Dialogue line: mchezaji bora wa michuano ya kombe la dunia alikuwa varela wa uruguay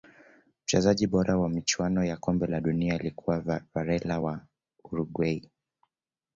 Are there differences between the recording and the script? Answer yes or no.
no